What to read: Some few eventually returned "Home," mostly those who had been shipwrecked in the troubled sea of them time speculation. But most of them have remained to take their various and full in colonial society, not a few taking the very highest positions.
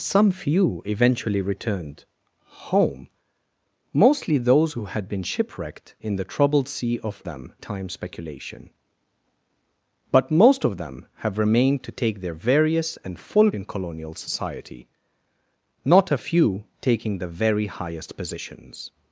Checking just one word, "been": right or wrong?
right